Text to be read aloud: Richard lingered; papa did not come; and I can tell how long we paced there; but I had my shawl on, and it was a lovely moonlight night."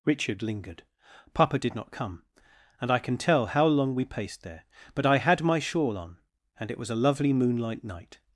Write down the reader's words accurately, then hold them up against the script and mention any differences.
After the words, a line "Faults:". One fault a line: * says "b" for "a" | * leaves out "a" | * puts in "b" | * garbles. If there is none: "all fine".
Richard lingered; papa did not come; and I can tell how long we paced there; but I had my shawl on, and it was a lovely moonlight night."
Faults:
all fine